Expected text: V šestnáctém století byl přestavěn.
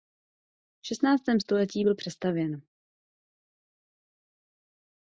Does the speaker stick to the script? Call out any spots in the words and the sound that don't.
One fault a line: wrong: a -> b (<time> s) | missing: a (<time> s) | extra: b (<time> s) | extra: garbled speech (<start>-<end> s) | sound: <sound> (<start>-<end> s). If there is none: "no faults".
no faults